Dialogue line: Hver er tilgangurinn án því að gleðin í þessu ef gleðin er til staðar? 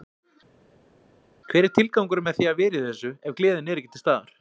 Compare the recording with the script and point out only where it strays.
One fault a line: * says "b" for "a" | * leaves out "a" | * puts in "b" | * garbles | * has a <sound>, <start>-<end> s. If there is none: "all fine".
* says "með" for "án"
* says "vera" for "gleðin"
* puts in "ekki"